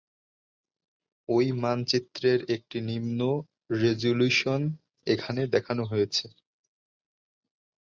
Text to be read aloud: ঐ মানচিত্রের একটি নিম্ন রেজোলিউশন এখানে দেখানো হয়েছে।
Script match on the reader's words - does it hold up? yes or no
yes